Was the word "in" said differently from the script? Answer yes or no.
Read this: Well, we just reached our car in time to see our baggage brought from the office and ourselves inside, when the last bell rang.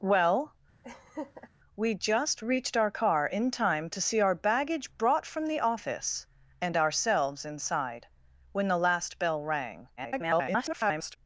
no